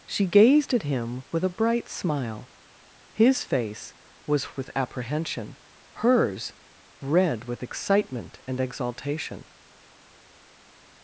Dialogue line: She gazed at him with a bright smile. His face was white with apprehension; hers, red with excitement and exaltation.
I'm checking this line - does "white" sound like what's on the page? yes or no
no